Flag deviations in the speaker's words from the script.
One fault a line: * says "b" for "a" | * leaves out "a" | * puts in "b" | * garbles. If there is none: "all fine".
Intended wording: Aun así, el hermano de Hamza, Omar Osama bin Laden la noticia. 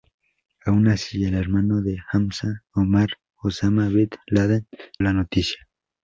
all fine